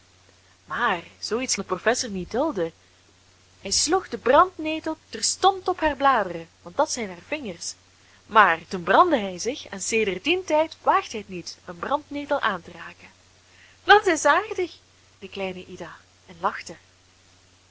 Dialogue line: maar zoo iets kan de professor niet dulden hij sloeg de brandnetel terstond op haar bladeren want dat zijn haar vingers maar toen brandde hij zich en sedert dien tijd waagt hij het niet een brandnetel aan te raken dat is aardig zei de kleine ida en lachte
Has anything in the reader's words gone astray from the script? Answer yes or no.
yes